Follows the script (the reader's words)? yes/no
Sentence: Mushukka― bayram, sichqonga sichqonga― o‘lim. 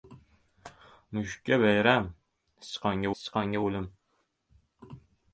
yes